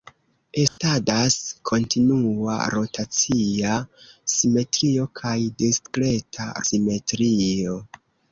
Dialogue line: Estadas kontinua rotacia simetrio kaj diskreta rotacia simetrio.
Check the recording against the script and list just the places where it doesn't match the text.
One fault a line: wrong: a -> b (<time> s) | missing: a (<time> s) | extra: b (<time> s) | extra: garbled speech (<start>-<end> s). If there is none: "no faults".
missing: rotacia (6.5 s)